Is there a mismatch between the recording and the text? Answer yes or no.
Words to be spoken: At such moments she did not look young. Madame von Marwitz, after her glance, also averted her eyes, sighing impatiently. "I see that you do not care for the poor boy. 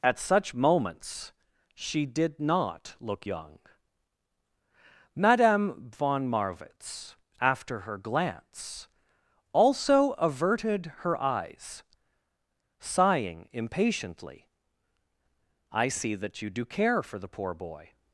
yes